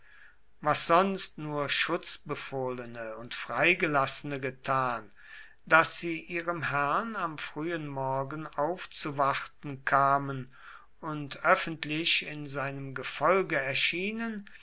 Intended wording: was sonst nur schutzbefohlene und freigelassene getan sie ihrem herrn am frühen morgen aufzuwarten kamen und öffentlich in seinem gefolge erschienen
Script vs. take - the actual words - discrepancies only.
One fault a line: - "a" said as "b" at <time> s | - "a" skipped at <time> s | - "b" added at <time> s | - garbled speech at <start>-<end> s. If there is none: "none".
- "daß" added at 5.7 s